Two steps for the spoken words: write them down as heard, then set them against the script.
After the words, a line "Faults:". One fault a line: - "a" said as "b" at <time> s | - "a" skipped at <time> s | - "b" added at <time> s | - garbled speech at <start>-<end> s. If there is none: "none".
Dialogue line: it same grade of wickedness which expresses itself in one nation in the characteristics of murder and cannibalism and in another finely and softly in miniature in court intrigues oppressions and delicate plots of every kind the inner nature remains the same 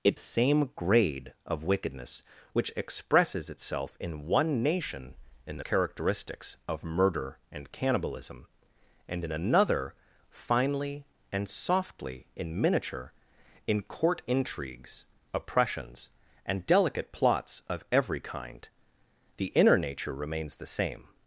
it same grade of wickedness which expresses itself in one nation in the characteristics of murder and cannibalism and in another finely and softly in miniature in court intrigues oppressions and delicate plots of every kind the inner nature remains the same
Faults:
none